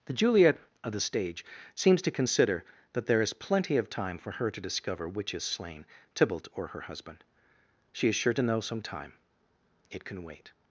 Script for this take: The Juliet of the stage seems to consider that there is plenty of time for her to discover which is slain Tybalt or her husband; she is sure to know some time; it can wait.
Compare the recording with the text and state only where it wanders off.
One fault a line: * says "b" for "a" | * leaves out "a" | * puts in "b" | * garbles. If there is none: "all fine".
all fine